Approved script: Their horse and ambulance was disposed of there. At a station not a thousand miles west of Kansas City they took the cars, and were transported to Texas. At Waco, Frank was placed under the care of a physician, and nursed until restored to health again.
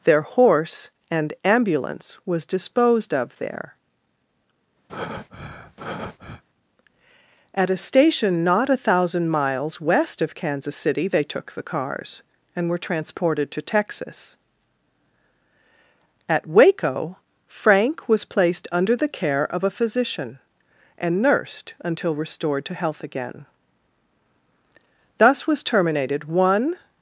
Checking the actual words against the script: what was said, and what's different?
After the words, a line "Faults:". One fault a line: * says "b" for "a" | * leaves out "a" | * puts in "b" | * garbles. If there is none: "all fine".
Their horse and ambulance was disposed of there. At a station not a thousand miles west of Kansas City they took the cars, and were transported to Texas. At Waco, Frank was placed under the care of a physician, and nursed until restored to health again. Thus was terminated one
Faults:
* puts in "Thus was terminated one"